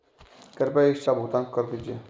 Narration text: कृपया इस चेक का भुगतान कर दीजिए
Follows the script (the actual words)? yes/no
no